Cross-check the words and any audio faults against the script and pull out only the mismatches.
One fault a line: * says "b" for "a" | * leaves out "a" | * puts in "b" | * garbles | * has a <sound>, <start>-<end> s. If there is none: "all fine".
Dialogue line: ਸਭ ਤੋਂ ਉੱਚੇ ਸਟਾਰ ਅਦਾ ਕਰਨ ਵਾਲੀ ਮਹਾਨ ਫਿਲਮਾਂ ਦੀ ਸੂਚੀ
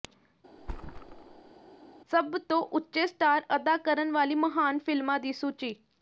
* has a thud, 0.6-1.5 s